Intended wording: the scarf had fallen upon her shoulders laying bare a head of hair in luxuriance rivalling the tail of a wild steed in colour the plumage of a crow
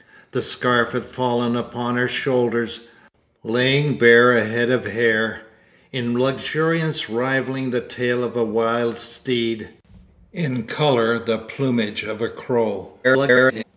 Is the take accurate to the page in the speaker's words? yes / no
no